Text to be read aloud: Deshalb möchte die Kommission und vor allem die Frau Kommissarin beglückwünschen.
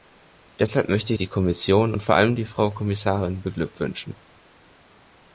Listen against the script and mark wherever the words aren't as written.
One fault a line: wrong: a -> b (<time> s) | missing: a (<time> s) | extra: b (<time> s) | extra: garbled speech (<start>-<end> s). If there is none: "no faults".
no faults